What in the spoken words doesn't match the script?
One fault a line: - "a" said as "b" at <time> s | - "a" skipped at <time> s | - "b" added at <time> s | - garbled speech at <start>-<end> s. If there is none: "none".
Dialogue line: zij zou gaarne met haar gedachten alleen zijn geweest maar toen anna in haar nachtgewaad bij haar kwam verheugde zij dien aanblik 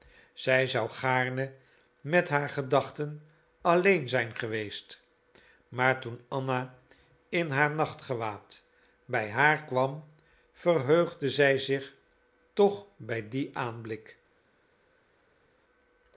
- "zich toch bij" added at 11.6 s